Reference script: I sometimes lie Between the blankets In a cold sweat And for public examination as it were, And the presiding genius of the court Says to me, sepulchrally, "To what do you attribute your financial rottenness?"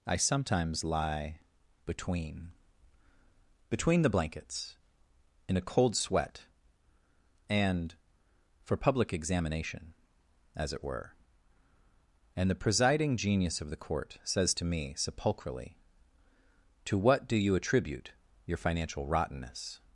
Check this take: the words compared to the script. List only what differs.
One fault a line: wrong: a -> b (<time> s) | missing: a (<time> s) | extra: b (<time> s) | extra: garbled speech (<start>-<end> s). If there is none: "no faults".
extra: Between (3.7 s)